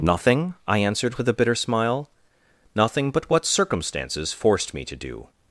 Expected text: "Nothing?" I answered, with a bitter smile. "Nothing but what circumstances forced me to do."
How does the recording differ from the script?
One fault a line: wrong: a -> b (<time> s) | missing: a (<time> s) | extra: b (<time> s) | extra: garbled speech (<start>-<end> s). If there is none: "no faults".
no faults